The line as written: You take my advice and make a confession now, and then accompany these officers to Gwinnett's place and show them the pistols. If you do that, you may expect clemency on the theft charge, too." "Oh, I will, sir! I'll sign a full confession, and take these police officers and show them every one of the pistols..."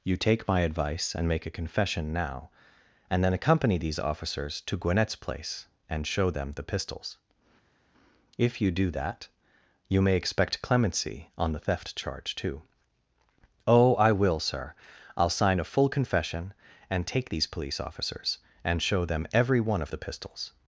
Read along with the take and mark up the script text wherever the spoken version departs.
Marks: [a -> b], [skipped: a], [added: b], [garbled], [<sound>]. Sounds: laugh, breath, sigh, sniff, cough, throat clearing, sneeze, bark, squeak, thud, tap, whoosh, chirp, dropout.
You take my advice and make a confession now, and then accompany these officers to Gwinnett's place and show them the pistols. If you do that, you may expect clemency on the theft charge, too." "Oh, I will, sir! I'll sign a full confession, and take these police officers and show them every one of the pistols..."